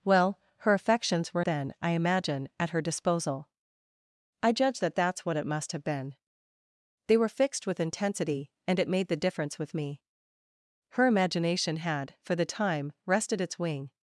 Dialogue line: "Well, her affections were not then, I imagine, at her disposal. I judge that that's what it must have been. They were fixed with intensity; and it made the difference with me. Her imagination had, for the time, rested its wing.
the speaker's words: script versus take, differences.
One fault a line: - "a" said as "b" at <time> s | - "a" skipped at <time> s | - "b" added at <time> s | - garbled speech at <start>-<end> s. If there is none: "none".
- "not" skipped at 1.4 s